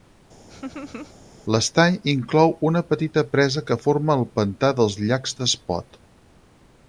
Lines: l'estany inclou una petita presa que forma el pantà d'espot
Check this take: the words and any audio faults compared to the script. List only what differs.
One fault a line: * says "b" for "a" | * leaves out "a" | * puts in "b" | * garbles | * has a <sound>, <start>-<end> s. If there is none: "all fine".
* has a laugh, 0.5-1.1 s
* puts in "dels llacs"